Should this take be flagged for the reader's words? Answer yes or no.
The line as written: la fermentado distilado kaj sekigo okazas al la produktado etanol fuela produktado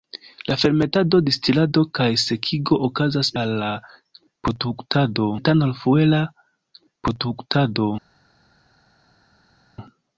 no